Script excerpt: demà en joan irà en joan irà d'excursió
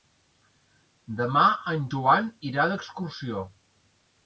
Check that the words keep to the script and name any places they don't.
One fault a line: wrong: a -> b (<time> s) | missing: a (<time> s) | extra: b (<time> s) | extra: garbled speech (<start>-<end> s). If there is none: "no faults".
missing: en joan irà (2.7 s)